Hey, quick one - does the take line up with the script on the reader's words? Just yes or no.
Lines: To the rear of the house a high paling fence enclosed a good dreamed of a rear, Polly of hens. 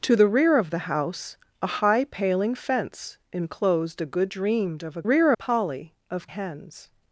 yes